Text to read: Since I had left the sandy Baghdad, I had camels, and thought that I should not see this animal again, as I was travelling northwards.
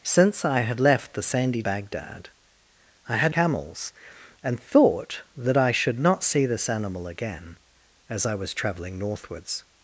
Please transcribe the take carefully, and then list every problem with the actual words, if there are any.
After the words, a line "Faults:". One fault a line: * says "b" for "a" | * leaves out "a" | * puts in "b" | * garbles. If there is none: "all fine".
Since I had left the sandy Baghdad, I had camels, and thought that I should not see this animal again, as I was travelling northwards.
Faults:
all fine